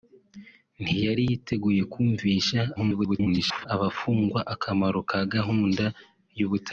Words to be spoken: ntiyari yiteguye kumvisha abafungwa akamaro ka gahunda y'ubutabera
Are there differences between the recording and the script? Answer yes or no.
yes